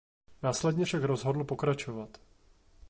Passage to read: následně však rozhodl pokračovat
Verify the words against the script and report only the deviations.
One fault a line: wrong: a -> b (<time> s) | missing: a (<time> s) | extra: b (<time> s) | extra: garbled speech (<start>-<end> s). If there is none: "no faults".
no faults